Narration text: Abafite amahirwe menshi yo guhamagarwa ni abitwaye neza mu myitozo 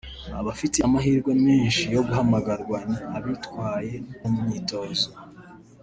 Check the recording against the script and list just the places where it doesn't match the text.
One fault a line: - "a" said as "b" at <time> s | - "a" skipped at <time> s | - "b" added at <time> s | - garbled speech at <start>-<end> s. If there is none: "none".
- "neza" skipped at 4.0 s